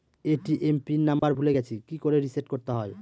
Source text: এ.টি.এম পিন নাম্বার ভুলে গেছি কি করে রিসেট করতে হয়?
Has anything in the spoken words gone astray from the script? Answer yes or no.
no